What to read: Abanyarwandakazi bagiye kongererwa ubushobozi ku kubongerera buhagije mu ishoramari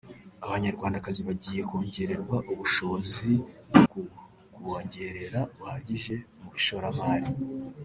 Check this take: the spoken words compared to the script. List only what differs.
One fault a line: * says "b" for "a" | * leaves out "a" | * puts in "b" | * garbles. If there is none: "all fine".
all fine